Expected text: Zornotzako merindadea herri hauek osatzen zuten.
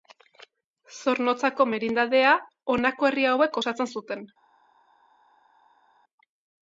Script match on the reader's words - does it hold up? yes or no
no